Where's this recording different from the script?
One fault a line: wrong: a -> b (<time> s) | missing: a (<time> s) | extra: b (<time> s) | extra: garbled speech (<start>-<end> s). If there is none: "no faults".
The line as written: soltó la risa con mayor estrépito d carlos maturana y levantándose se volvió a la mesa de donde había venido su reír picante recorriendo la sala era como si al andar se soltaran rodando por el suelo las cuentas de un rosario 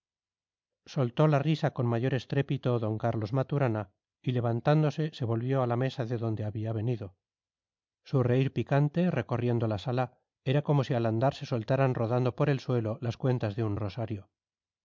no faults